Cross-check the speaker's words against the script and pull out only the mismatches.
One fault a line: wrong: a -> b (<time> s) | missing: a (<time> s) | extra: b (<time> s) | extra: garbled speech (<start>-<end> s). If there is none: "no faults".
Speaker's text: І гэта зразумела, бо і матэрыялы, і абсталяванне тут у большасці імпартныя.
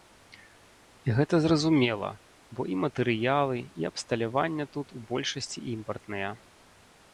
no faults